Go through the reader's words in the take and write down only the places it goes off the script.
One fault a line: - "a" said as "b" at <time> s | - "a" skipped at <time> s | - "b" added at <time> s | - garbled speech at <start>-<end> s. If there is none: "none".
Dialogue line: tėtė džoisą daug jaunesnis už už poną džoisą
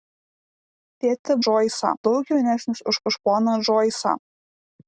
none